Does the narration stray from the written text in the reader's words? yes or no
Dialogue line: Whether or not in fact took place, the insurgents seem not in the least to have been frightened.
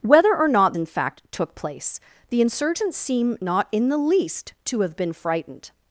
no